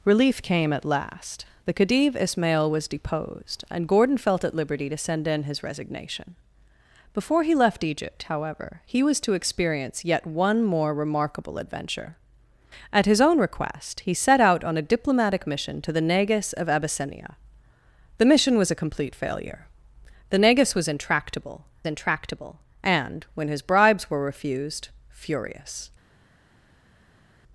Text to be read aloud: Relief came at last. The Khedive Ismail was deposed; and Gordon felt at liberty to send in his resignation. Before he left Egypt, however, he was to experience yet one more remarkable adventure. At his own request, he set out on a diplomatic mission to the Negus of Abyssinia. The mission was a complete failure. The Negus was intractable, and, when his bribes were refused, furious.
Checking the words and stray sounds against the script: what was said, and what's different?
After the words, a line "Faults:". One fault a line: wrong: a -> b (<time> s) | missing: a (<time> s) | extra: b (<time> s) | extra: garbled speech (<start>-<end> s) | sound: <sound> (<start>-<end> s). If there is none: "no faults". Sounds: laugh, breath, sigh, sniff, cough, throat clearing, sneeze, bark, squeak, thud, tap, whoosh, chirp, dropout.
Relief came at last. The Khedive Ismail was deposed; and Gordon felt at liberty to send in his resignation. Before he left Egypt, however, he was to experience yet one more remarkable adventure. At his own request, he set out on a diplomatic mission to the Negus of Abyssinia. The mission was a complete failure. The Negus was intractable intractable, and, when his bribes were refused, furious.
Faults:
extra: intractable (21.8 s)